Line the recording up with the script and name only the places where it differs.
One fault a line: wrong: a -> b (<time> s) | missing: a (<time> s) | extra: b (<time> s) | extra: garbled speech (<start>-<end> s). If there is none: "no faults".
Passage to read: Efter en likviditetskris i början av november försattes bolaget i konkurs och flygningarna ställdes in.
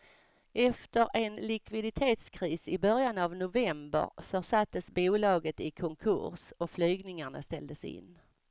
no faults